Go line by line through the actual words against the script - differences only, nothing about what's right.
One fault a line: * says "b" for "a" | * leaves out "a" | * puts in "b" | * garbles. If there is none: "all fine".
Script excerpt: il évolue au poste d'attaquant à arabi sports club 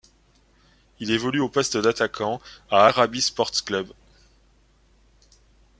all fine